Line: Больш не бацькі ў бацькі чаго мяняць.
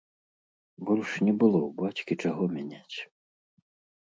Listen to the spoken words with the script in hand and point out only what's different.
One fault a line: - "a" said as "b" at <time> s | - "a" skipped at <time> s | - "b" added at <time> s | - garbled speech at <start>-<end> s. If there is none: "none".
- "бацькі" said as "было" at 1.4 s